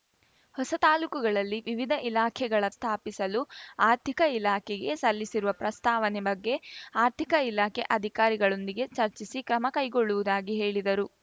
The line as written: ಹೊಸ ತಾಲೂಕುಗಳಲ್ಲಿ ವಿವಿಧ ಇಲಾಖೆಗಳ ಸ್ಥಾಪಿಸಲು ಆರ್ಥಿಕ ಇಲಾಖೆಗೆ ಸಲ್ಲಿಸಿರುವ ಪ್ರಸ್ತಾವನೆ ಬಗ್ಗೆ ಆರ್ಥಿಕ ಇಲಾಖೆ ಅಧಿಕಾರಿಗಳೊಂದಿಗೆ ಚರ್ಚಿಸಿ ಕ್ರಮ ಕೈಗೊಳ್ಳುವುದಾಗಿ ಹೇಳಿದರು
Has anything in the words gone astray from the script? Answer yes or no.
no